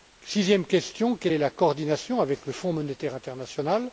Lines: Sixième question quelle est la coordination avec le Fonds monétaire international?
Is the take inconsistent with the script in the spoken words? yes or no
no